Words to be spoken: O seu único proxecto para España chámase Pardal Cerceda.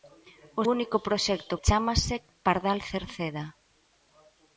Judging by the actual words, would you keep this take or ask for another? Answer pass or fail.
fail